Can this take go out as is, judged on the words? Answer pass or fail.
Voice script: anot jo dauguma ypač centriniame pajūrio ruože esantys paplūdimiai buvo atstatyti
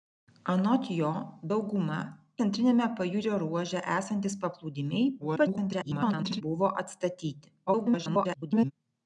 fail